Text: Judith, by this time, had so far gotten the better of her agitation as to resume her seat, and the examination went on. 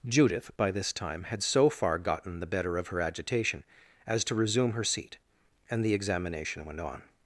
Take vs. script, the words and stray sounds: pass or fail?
pass